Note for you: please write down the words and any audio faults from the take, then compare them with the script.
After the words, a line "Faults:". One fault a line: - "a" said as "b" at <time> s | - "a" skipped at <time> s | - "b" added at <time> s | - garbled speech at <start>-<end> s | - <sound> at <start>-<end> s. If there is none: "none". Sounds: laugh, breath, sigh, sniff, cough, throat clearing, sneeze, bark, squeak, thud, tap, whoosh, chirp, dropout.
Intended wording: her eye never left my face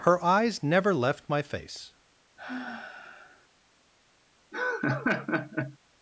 her eyes never left my face
Faults:
- "eye" said as "eyes" at 0.2 s
- sigh at 2.4-3.5 s
- laugh at 4.5-5.8 s